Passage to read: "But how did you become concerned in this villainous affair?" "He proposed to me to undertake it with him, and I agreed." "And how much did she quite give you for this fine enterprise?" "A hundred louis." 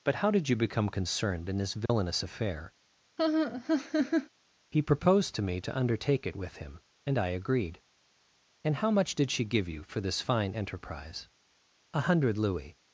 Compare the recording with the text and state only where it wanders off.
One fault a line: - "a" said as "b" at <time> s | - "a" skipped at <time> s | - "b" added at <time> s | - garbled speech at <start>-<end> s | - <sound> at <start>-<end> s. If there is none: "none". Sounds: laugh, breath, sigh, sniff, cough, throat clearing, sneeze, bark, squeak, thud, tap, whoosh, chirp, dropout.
- dropout at 1.9-1.9 s
- laugh at 3.2-4.3 s
- "quite" skipped at 9.5 s